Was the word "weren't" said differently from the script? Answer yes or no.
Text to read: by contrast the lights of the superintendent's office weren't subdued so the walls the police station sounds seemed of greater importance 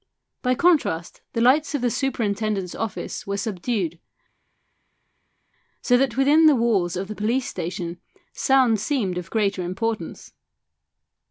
yes